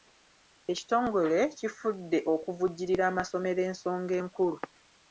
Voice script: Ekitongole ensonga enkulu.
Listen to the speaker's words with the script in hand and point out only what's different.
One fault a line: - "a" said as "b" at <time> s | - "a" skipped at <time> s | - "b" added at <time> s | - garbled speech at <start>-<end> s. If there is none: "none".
- "kifudde okuvujjirira amasomero" added at 1.6 s